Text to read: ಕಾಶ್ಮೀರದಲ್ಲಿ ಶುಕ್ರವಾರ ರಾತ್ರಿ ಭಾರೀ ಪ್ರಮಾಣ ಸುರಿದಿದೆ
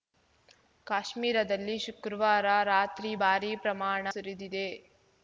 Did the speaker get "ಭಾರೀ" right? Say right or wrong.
right